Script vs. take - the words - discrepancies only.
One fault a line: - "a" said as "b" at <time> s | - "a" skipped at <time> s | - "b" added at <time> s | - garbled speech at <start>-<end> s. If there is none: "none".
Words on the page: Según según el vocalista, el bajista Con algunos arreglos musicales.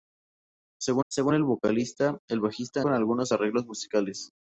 none